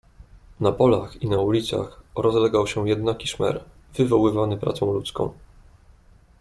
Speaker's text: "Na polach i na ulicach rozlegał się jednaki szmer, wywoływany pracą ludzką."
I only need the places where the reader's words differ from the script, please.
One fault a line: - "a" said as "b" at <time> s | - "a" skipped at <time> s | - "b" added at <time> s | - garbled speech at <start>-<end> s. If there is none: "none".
none